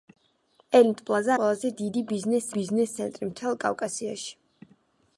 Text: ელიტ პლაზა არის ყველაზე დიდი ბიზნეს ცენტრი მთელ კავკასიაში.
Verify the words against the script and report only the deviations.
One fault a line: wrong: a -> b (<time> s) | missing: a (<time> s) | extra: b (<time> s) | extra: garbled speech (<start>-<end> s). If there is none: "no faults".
missing: არის (1.4 s)
extra: ბიზნეს (2.6 s)